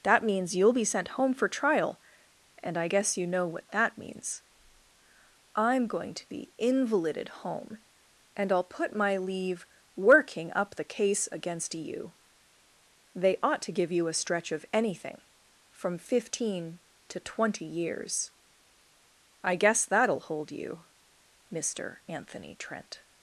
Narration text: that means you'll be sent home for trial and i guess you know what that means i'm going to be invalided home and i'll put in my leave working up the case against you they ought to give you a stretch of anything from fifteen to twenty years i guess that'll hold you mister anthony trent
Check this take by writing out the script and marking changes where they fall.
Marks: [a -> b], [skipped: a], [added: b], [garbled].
that means you'll be sent home for trial and i guess you know what that means i'm going to be invalided home and i'll put [skipped: in] my leave working up the case against you they ought to give you a stretch of anything from fifteen to twenty years i guess that'll hold you mister anthony trent